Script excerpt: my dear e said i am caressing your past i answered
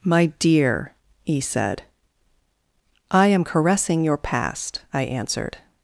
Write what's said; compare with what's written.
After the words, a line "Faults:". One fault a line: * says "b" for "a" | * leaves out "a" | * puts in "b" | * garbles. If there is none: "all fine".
my dear e said i am caressing your past i answered
Faults:
all fine